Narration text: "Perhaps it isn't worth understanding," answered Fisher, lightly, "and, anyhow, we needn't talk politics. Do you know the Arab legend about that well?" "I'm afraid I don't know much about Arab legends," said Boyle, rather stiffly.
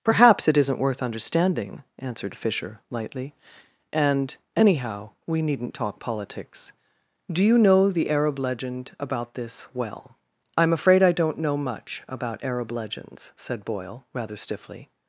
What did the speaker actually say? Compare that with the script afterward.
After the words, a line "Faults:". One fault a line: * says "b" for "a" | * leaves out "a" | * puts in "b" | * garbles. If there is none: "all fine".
"Perhaps it isn't worth understanding," answered Fisher, lightly, "and, anyhow, we needn't talk politics. Do you know the Arab legend about this well?" "I'm afraid I don't know much about Arab legends," said Boyle, rather stiffly.
Faults:
* says "this" for "that"